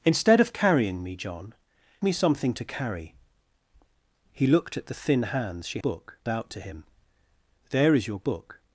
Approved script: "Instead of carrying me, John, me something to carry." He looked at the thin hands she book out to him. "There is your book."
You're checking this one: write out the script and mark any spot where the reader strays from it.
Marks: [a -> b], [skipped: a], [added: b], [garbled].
"Instead of carrying me, John, me something to carry." He looked at the thin hands she book out to him. "There is your book."